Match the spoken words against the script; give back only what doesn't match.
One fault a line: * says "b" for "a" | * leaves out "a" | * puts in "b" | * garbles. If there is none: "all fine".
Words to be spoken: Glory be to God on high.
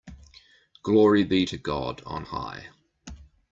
all fine